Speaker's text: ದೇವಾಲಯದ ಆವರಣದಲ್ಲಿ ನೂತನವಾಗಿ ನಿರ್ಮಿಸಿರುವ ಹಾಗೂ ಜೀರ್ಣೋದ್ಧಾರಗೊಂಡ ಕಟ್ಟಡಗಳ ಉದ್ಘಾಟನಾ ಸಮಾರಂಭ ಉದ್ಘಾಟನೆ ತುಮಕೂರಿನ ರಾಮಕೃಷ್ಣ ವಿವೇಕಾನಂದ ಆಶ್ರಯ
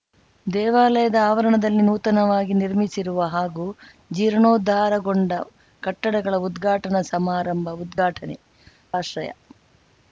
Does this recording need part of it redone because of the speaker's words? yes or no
yes